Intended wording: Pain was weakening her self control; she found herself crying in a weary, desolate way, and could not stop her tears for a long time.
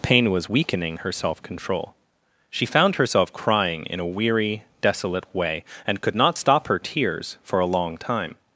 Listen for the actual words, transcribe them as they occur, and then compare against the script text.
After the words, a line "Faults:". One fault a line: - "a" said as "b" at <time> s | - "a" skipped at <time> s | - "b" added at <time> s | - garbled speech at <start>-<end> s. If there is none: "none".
Pain was weakening her self control; she found herself crying in a weary, desolate way, and could not stop her tears for a long time.
Faults:
none